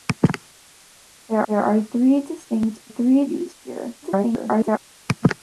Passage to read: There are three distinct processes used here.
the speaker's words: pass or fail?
fail